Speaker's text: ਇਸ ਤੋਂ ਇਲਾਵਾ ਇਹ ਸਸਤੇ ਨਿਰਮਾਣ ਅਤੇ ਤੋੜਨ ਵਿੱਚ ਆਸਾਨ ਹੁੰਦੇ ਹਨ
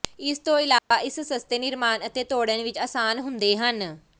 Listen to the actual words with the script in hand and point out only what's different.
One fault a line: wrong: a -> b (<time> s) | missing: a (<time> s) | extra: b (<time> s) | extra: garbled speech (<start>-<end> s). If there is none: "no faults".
no faults